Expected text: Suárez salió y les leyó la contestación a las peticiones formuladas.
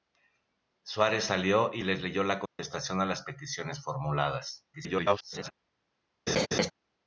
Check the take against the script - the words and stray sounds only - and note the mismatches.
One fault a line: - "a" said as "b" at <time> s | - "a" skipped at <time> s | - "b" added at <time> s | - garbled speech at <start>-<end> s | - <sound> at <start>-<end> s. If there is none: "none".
- dropout at 2.5-2.6 s
- garbled speech at 4.7-5.5 s
- laugh at 6.3-6.7 s